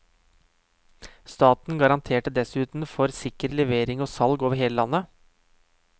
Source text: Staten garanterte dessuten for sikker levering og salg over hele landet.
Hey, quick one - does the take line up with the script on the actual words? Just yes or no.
yes